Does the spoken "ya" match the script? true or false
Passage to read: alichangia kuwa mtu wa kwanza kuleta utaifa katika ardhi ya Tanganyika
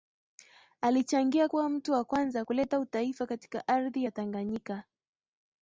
true